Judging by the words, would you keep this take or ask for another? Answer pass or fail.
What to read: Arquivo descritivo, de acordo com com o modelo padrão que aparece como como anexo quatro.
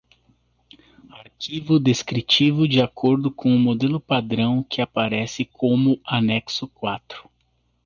fail